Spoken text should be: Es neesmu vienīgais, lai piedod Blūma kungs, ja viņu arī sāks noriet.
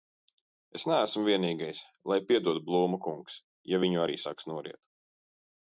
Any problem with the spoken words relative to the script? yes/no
no